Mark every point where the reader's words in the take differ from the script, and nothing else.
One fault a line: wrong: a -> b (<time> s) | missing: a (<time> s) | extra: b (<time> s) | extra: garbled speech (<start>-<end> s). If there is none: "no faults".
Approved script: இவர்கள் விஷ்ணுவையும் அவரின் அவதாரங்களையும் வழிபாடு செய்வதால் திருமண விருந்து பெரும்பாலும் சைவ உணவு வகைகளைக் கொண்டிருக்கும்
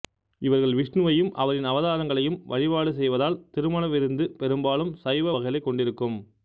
missing: உணவு (5.3 s)